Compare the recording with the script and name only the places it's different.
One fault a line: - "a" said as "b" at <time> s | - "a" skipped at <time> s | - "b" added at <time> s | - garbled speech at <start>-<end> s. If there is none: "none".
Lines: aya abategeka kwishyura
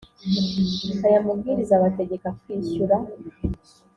- "mabwiriza" added at 1.2 s